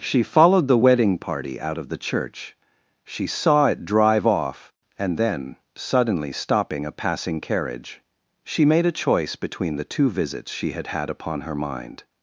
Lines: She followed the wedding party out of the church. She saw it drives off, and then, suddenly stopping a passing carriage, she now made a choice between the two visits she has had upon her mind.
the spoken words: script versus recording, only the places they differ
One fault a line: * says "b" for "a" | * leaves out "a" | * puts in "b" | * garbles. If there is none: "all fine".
* says "drive" for "drives"
* leaves out "now"
* says "had" for "has"